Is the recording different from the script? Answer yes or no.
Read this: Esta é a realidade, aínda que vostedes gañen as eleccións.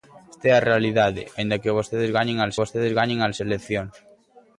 yes